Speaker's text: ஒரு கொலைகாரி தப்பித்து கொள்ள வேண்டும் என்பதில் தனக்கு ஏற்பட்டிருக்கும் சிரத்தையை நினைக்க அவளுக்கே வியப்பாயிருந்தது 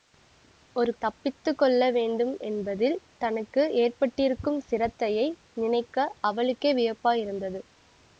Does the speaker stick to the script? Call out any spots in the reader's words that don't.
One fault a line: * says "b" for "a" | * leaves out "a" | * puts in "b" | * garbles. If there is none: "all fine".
* leaves out "கொலைகாரி"